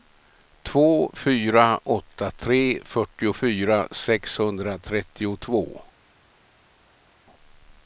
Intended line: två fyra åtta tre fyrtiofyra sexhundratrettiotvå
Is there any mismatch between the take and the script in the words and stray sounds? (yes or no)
no